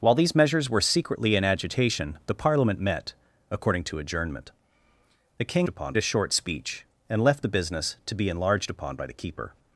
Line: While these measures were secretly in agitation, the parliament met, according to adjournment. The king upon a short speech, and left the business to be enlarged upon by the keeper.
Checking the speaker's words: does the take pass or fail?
pass